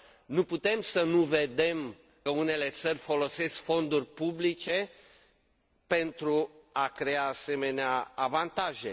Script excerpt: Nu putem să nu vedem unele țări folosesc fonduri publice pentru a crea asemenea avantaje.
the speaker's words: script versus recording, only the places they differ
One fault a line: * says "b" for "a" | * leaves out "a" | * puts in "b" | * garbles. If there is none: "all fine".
all fine